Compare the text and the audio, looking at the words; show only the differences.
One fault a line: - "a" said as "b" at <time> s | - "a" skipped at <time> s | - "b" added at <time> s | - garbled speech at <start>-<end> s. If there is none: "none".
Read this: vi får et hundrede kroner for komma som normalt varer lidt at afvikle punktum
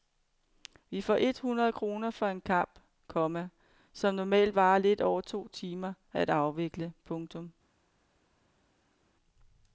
- "en kamp" added at 2.3 s
- "over to timer" added at 5.0 s